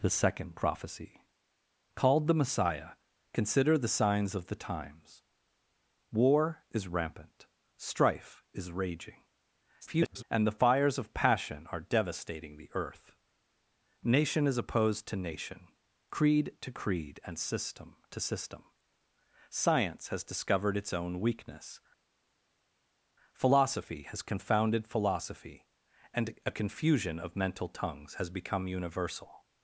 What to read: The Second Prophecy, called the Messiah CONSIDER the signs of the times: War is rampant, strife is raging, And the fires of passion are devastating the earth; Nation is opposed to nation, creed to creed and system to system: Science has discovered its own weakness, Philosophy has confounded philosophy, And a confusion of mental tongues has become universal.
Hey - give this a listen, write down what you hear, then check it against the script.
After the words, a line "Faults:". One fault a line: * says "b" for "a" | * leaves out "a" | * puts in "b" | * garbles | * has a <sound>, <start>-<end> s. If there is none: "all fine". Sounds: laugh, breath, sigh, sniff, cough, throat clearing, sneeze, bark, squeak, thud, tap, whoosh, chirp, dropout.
The Second Prophecy, called the Messiah CONSIDER the signs of the times: War is rampant, strife is raging, [garbled] And the fires of passion are devastating the earth; Nation is opposed to nation, creed to creed and system to system: Science has discovered its own weakness, Philosophy has confounded philosophy, And a confusion of mental tongues has become universal.
Faults:
* garbles